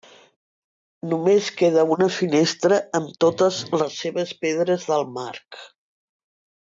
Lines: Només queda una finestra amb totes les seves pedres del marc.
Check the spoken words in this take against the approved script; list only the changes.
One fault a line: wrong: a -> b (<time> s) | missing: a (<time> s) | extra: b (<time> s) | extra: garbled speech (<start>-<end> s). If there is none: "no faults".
no faults